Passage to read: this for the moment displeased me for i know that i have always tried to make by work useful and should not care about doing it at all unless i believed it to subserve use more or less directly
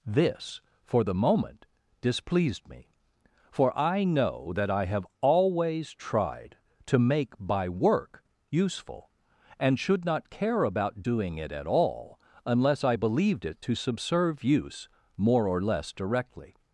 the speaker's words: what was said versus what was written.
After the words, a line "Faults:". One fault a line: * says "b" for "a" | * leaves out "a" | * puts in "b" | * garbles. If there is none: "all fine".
this for the moment displeased me for i know that i have always tried to make by work useful and should not care about doing it at all unless i believed it to subserve use more or less directly
Faults:
all fine